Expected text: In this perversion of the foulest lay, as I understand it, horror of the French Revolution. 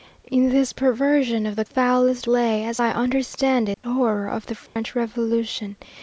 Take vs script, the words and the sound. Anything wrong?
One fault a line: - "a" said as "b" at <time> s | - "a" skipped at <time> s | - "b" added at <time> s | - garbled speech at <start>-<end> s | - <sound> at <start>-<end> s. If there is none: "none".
- dropout at 3.7-3.8 s
- dropout at 4.7-4.8 s